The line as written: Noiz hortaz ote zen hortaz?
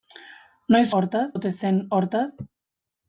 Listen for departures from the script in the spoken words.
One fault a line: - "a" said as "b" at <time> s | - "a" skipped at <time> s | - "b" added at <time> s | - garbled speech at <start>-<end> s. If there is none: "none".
none